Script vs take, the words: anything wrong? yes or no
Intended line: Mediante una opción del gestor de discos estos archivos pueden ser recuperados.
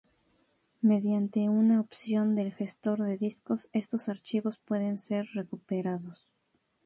no